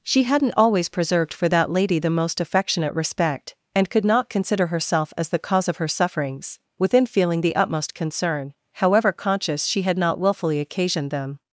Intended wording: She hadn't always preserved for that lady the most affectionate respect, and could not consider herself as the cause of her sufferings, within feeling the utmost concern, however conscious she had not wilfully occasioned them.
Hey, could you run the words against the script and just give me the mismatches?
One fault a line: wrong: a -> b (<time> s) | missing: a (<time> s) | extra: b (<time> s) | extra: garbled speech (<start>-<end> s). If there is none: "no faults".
no faults